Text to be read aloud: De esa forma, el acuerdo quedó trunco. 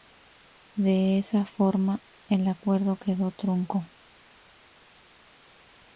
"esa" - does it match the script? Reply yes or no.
yes